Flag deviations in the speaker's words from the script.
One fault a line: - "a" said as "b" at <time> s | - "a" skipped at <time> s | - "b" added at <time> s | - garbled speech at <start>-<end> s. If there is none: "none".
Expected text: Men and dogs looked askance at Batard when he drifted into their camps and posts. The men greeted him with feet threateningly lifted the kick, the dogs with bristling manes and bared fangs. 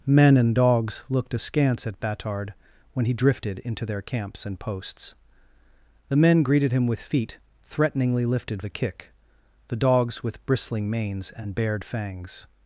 none